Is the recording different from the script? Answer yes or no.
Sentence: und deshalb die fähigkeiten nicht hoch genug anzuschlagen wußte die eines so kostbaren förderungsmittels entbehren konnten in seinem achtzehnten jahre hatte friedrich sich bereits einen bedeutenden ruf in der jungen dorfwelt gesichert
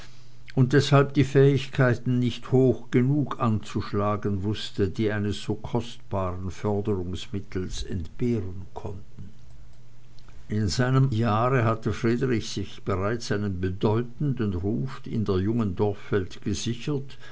yes